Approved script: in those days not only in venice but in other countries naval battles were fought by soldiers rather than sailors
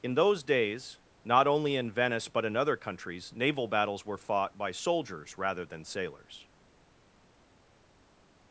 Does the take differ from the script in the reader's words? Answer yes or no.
no